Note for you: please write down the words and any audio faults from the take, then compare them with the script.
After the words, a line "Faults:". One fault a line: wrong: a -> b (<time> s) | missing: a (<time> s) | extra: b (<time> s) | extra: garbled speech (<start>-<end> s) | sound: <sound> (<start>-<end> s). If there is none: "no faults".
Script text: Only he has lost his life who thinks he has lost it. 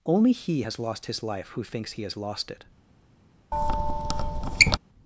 Only he has lost his life who thinks he has lost it.
Faults:
sound: squeak (3.5-4.8 s)